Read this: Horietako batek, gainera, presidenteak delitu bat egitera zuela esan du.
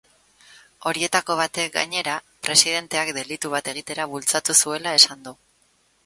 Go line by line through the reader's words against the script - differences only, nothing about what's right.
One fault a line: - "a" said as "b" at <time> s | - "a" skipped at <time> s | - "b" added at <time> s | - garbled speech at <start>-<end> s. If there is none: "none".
- "bultzatu" added at 4.1 s